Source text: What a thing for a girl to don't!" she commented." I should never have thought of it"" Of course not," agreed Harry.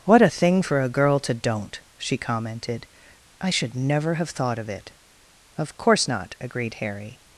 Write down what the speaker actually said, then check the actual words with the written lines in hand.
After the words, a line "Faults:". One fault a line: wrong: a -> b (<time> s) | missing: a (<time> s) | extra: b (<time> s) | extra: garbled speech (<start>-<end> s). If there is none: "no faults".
What a thing for a girl to don't!" she commented." I should never have thought of it"" Of course not," agreed Harry.
Faults:
no faults